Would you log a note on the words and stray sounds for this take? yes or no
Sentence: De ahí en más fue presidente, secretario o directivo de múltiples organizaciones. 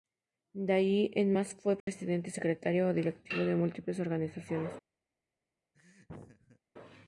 yes